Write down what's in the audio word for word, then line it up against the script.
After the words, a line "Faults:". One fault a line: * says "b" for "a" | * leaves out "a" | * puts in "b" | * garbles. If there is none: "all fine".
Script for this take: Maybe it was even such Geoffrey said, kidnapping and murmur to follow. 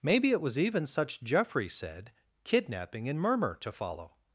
Maybe it was even such Geoffrey said, kidnapping and murmur to follow.
Faults:
all fine